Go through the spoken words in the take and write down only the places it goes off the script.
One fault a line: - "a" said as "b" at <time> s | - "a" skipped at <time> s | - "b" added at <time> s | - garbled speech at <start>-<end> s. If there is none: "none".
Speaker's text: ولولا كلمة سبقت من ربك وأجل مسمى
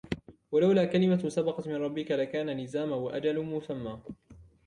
- "لكان لزاما" added at 2.1 s